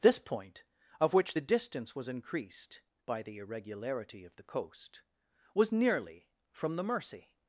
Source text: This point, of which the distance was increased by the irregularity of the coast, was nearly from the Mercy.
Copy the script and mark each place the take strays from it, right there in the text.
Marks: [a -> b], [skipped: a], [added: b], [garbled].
This point, of which the distance was increased by the irregularity of the coast, was nearly from the Mercy.